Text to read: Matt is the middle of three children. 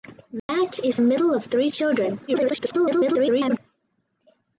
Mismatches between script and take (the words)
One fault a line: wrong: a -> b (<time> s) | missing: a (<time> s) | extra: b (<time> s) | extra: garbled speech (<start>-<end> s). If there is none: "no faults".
missing: the (1.0 s)
extra: garbled speech (2.3-3.6 s)